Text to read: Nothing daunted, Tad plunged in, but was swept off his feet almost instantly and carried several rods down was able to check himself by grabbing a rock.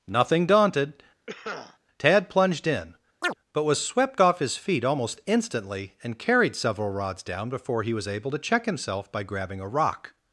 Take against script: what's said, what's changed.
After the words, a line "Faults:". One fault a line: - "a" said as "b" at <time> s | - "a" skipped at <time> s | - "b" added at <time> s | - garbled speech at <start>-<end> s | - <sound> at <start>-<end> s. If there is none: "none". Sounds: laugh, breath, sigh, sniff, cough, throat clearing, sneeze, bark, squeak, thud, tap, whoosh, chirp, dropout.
Nothing daunted, Tad plunged in, but was swept off his feet almost instantly and carried several rods down before he was able to check himself by grabbing a rock.
Faults:
- cough at 1.3-1.8 s
- chirp at 3.2-3.4 s
- "before he" added at 7.5 s